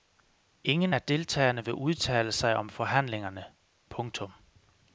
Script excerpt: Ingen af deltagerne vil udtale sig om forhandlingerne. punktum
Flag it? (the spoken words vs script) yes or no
no